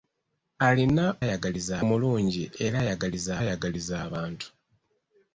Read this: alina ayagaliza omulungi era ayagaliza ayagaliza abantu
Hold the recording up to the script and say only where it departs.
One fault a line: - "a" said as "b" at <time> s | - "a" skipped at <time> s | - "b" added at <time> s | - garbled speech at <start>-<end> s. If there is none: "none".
none